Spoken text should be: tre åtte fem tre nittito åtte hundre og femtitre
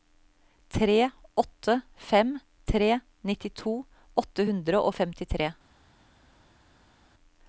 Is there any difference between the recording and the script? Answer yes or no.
no